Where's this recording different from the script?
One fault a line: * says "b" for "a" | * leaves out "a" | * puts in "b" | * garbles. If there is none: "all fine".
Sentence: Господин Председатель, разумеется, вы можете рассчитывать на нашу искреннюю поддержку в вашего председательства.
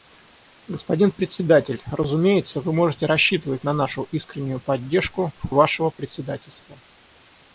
all fine